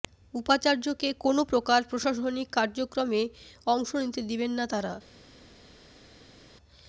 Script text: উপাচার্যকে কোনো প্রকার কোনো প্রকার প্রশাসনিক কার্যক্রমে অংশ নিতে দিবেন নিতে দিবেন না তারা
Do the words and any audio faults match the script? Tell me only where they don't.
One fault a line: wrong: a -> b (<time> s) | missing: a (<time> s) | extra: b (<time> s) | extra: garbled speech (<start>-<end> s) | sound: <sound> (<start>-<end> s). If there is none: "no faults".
missing: কোনো প্রকার (1.8 s)
missing: নিতে দিবেন (4.5 s)